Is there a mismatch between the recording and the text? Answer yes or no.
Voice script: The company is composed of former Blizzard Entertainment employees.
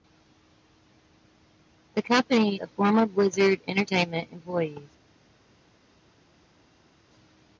yes